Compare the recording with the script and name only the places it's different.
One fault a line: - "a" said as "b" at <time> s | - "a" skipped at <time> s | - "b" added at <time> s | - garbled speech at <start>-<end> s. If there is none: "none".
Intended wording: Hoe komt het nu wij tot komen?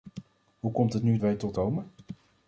none